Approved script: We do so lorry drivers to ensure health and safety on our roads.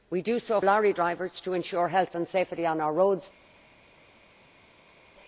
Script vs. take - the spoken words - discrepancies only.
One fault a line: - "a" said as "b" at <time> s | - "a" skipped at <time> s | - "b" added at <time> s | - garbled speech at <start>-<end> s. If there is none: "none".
none